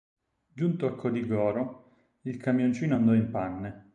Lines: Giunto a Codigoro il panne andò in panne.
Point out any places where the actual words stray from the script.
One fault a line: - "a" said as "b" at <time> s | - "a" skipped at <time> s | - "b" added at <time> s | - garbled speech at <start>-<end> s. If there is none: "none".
- "panne" said as "camioncino" at 2.4 s